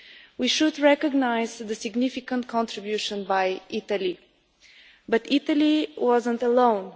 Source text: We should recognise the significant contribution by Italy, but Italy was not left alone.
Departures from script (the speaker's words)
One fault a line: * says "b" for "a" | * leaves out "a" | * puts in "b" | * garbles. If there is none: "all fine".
* leaves out "left"